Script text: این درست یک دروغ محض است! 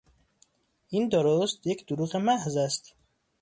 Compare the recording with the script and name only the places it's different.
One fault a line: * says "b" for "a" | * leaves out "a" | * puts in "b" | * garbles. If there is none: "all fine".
all fine